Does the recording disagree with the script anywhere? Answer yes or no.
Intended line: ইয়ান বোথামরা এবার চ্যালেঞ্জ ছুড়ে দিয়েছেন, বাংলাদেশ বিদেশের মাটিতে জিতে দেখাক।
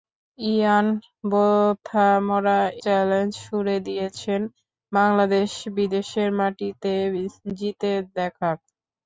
yes